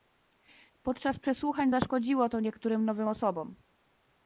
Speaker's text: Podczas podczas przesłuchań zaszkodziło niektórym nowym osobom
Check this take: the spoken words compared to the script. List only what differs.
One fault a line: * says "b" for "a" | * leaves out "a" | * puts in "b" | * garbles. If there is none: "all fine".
* leaves out "podczas"
* puts in "to"